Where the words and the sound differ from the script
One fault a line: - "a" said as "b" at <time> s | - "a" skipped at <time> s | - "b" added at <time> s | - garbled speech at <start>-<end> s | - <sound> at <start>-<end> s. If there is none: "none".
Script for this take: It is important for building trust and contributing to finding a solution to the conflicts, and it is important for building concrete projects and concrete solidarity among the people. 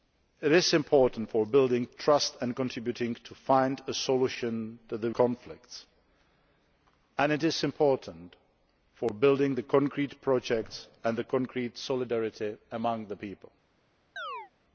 - chirp at 14.2-14.5 s